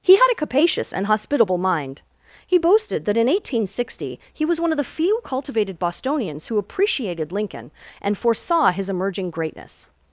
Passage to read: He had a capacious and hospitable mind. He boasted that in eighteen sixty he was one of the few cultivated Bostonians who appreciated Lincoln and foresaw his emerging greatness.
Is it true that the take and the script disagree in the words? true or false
false